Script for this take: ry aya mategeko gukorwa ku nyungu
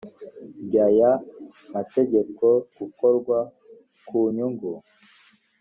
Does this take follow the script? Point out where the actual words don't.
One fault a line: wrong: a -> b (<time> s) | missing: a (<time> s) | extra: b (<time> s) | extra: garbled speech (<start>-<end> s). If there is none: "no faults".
no faults